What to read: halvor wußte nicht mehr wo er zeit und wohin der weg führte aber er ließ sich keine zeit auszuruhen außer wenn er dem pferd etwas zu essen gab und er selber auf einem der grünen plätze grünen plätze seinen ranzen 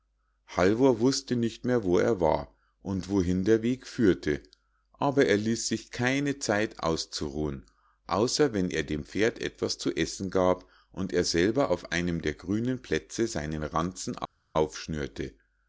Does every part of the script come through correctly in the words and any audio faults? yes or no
no